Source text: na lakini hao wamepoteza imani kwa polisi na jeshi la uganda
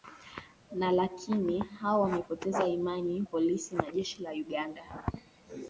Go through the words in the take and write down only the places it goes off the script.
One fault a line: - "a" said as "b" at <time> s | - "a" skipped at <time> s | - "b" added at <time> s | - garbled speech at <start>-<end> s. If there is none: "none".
- "kwa" skipped at 3.2 s